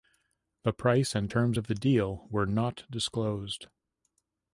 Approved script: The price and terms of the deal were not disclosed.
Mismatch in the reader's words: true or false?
false